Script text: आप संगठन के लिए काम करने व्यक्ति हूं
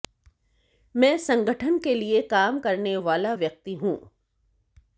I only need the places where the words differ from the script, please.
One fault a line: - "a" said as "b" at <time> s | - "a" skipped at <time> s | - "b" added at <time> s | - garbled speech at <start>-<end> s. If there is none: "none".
- "आप" said as "मैं" at 0.9 s
- "वाला" added at 3.0 s